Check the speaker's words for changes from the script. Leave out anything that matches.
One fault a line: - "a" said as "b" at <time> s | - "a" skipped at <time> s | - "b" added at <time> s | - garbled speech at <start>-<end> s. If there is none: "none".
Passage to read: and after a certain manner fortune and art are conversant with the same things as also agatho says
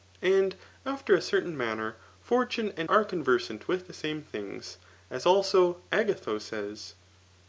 - "art" skipped at 2.9 s